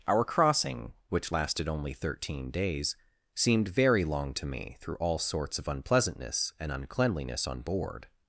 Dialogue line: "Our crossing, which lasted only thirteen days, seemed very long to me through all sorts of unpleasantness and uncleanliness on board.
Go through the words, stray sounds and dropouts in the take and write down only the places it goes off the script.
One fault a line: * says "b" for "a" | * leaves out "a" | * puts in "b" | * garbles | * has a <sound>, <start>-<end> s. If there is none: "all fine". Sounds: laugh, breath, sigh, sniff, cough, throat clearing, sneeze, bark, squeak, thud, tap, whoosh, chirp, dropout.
all fine